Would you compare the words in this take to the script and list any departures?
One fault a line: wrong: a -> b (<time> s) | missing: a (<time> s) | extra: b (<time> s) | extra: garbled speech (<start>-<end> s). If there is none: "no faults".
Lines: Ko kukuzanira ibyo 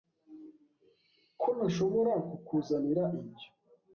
extra: ntashobora (1.6 s)